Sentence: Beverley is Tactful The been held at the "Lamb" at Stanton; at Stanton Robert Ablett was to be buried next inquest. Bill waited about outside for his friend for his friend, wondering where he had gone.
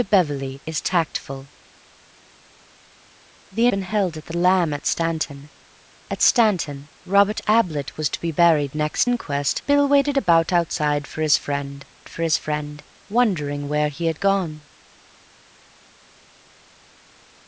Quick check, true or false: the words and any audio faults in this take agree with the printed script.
true